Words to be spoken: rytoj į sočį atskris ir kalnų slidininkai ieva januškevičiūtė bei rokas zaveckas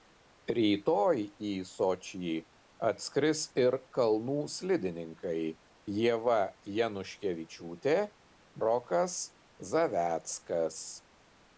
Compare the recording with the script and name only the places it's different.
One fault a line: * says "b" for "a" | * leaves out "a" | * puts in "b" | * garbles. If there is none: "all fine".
* leaves out "bei"